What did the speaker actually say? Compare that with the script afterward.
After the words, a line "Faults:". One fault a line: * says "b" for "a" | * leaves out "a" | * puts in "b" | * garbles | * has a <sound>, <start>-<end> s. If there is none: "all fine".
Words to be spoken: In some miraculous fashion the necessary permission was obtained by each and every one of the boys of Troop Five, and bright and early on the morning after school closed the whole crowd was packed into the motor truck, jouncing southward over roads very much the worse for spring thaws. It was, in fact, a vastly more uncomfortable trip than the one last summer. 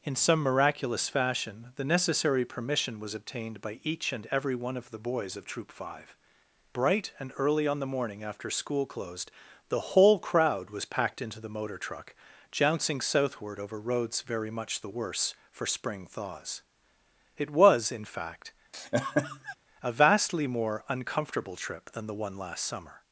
In some miraculous fashion the necessary permission was obtained by each and every one of the boys of Troop Five, bright and early on the morning after school closed the whole crowd was packed into the motor truck, jouncing southward over roads very much the worse for spring thaws. It was, in fact, a vastly more uncomfortable trip than the one last summer.
Faults:
* leaves out "and"
* has a laugh, 18.7-19.6 s